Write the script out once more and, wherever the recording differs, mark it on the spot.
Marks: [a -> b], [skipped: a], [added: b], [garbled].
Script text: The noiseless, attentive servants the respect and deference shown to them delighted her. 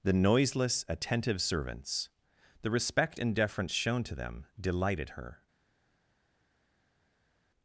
The noiseless, attentive servants the respect and deference shown to them delighted her.